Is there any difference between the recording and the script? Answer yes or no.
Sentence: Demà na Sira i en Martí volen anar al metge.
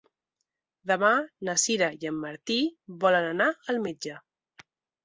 no